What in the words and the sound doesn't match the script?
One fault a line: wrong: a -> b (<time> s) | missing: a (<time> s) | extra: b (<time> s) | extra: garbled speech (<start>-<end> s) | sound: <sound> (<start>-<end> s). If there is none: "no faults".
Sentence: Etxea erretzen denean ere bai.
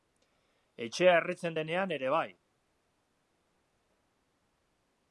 no faults